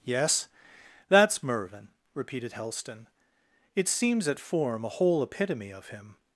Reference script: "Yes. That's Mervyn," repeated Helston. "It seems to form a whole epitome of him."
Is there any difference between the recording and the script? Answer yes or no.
yes